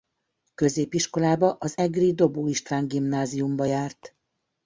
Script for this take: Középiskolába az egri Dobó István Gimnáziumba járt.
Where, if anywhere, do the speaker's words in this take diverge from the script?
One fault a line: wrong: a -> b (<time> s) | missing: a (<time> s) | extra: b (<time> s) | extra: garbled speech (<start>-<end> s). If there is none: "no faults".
no faults